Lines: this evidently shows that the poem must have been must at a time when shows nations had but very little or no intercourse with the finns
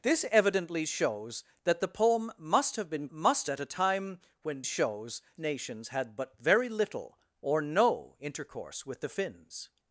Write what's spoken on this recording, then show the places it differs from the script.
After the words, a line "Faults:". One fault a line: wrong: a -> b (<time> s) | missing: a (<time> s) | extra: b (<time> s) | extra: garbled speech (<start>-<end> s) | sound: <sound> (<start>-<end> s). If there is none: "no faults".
this evidently shows that the poem must have been must at a time when shows nations had but very little or no intercourse with the finns
Faults:
no faults